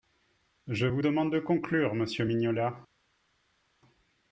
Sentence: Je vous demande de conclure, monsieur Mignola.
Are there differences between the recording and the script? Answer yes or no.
no